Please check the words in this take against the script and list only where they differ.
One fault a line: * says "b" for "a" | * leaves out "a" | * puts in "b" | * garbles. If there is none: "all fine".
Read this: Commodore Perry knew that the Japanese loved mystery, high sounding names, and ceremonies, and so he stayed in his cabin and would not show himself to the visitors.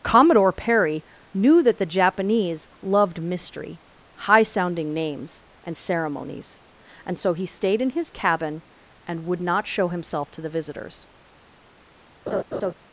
all fine